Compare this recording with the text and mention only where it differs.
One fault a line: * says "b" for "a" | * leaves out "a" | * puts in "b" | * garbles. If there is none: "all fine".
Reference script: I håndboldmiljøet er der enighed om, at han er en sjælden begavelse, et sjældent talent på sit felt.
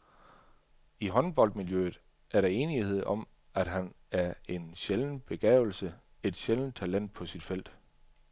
all fine